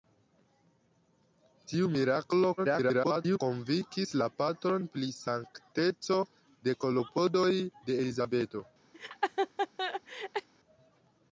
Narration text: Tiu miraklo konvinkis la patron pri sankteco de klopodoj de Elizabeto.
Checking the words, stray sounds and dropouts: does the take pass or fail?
fail